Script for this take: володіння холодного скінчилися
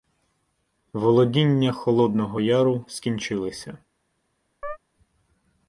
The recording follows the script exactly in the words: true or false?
false